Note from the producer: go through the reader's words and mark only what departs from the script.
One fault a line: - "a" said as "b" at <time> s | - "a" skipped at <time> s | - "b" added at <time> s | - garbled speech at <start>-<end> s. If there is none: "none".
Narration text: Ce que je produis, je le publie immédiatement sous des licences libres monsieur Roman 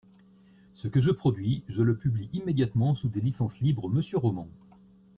none